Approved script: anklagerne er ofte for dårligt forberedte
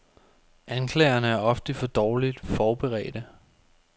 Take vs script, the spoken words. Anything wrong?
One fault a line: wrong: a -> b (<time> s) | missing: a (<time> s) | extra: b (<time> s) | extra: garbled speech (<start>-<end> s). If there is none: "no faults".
no faults